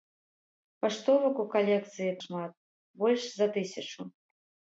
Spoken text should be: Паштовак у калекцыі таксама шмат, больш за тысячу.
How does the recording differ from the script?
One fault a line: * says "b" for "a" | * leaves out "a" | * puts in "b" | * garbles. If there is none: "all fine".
* leaves out "таксама"